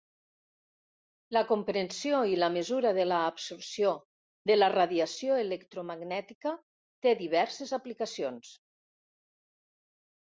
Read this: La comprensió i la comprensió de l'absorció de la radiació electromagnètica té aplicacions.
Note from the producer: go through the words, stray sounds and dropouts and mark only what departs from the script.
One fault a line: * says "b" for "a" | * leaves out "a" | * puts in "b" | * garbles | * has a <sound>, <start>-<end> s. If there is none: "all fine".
* says "mesura" for "comprensió"
* puts in "diverses"